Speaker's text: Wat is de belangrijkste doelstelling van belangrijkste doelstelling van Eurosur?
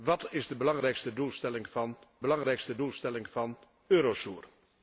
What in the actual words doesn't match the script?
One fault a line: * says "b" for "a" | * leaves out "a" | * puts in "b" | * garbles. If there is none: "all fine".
all fine